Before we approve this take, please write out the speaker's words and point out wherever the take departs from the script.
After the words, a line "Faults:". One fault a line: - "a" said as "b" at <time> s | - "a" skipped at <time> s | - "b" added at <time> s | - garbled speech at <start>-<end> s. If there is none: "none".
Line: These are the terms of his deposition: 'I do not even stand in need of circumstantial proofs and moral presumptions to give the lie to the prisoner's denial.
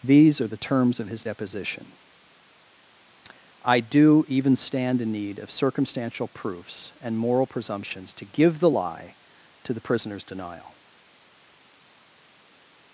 These are the terms of his deposition: 'I do even stand in need of circumstantial proofs and moral presumptions to give the lie to the prisoner's denial.
Faults:
- "not" skipped at 4.2 s